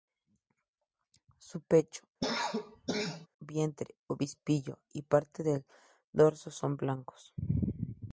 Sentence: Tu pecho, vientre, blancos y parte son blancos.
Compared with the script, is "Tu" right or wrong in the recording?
wrong